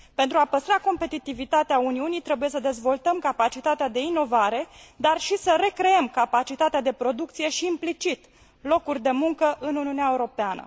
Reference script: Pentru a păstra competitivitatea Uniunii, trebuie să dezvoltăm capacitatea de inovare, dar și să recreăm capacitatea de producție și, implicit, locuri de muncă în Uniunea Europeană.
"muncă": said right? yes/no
yes